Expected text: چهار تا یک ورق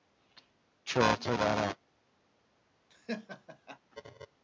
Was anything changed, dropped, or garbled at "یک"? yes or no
yes